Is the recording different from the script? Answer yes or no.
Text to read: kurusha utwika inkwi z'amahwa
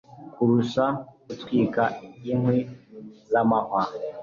no